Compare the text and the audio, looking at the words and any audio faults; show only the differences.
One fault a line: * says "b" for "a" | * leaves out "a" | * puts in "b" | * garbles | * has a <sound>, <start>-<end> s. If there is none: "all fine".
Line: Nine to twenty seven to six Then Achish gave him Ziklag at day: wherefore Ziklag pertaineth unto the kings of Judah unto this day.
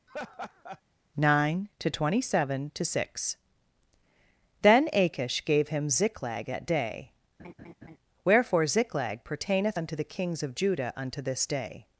* has a laugh, 0.1-0.8 s
* has a laugh, 7.4-8.0 s